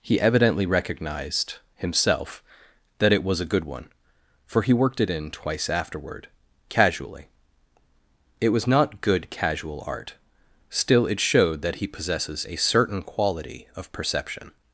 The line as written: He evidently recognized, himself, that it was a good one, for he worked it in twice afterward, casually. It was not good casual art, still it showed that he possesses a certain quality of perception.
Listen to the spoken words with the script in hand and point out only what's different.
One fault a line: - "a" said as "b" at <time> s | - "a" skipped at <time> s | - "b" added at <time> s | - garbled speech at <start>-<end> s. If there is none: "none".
none